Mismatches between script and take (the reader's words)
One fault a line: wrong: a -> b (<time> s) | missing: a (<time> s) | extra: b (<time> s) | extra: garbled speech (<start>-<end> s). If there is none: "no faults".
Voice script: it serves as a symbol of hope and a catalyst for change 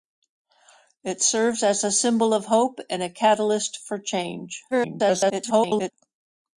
extra: garbled speech (4.7-5.9 s)